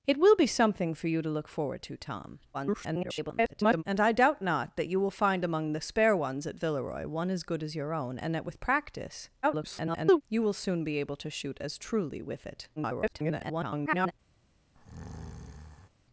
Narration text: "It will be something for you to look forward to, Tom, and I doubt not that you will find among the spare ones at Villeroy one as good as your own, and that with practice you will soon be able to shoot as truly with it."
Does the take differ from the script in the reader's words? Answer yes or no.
yes